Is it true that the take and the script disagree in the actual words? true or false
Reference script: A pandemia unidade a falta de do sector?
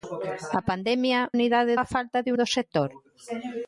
false